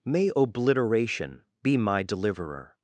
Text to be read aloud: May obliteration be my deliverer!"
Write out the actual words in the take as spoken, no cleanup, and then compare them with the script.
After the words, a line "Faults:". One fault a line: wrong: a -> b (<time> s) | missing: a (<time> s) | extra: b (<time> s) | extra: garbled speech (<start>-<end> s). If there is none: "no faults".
May obliteration be my deliverer!"
Faults:
no faults